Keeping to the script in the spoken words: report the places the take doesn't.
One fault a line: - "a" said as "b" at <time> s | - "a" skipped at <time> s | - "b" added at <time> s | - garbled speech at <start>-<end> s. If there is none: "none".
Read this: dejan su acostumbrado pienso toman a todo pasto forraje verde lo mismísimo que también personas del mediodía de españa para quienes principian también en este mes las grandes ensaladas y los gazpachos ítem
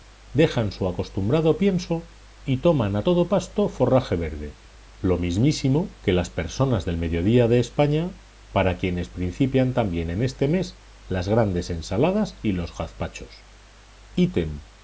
- "y" added at 2.4 s
- "también" said as "las" at 6.1 s